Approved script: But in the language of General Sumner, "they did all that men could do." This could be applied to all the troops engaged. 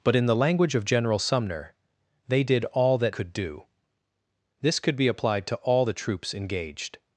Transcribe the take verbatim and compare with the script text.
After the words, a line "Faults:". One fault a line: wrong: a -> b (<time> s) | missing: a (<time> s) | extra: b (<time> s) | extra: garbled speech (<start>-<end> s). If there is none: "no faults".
But in the language of General Sumner, "they did all that could do." This could be applied to all the troops engaged.
Faults:
missing: men (3.1 s)